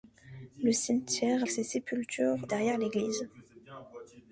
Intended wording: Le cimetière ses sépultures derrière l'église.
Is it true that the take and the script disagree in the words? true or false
false